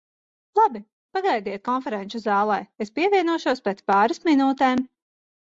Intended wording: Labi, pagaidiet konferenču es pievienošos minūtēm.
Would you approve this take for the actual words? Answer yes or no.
no